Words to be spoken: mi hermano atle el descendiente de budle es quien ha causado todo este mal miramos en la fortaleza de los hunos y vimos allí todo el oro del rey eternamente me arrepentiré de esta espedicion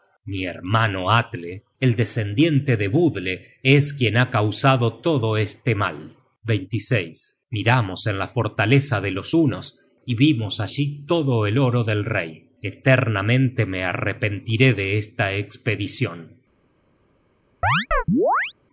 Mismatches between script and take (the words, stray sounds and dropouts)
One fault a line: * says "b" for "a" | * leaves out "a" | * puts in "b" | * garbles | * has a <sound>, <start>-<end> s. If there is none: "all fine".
* has a chirp, 17.6-18.5 s